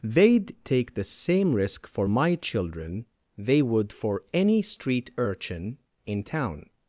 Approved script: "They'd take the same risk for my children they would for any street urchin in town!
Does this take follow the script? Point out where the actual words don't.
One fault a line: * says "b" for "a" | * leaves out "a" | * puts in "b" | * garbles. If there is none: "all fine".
all fine